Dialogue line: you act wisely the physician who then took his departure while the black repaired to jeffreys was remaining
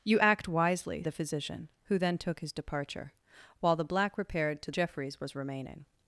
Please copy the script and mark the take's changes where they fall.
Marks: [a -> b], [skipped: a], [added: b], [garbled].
you act wisely the physician who then took his departure while the black repaired to jeffreys was remaining